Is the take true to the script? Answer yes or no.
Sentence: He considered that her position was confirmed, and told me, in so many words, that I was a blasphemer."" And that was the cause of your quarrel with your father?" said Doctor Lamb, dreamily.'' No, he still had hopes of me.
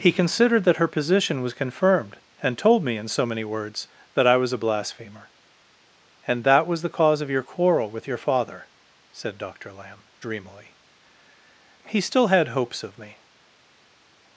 no